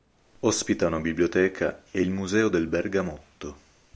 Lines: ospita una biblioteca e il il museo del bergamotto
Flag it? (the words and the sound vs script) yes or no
yes